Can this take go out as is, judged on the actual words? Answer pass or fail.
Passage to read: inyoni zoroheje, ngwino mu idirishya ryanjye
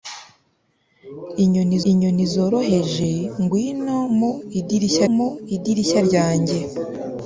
fail